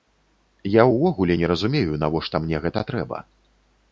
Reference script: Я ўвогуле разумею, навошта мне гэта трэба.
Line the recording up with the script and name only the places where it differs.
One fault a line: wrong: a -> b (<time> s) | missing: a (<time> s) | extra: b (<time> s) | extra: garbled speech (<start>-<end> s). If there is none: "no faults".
extra: не (1.4 s)